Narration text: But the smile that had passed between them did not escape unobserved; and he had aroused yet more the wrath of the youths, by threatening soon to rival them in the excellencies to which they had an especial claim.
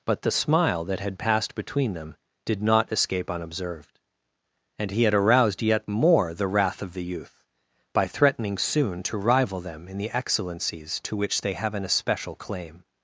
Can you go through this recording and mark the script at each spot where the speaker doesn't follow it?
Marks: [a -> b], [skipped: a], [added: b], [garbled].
But the smile that had passed between them did not escape unobserved; and he had aroused yet more the wrath of the [youths, -> youth] by threatening soon to rival them in the excellencies to which they [had -> have] an especial claim.